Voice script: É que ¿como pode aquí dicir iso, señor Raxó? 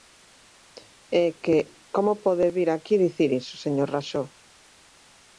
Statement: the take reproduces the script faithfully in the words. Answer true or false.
false